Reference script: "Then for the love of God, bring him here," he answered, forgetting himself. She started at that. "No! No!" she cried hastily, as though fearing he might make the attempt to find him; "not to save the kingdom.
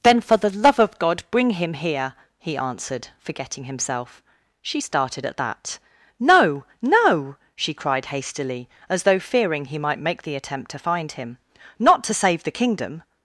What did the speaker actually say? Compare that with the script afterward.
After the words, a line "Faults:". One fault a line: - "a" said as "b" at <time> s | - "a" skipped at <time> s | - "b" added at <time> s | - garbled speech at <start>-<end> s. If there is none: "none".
"Then for the love of God, bring him here," he answered, forgetting himself. She started at that. "No! No!" she cried hastily, as though fearing he might make the attempt to find him; "not to save the kingdom.
Faults:
none